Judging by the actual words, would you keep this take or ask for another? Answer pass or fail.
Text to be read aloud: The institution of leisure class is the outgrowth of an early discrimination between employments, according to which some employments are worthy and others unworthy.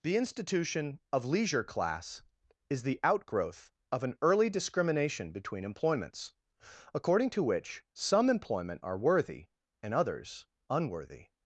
fail